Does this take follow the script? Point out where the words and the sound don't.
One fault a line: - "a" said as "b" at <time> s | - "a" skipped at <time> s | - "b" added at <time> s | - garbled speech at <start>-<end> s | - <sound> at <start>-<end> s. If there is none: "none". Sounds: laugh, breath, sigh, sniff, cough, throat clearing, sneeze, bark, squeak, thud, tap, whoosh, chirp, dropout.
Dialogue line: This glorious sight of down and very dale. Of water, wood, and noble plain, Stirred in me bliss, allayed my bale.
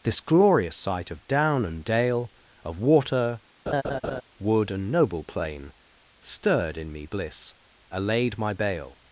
- "very" skipped at 1.8 s
- laugh at 3.7-4.2 s